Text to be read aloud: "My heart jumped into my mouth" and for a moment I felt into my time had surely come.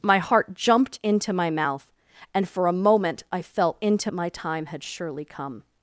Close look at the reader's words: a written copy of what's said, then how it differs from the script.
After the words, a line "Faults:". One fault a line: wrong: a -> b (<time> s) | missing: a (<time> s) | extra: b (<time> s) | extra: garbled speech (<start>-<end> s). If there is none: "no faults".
"My heart jumped into my mouth" and for a moment I felt into my time had surely come.
Faults:
no faults